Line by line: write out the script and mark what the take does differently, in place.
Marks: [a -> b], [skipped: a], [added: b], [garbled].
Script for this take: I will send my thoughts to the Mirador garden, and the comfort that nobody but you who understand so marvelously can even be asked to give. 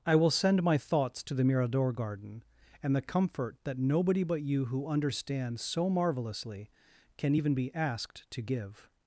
I will send my thoughts to the Mirador garden, and the comfort that nobody but you who understand so marvelously can even be asked to give.